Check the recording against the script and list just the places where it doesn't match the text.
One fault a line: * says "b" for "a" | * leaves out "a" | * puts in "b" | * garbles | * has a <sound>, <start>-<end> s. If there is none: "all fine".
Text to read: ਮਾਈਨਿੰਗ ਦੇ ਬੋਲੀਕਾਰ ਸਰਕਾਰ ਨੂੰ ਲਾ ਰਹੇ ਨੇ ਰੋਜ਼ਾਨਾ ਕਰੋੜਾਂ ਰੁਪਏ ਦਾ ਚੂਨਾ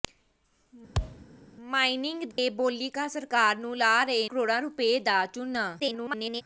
* has a thud, 0.9-1.3 s
* has a dropout, 2.3-2.4 s
* leaves out "ਨੇ ਰੋਜ਼ਾਨਾ"
* garbles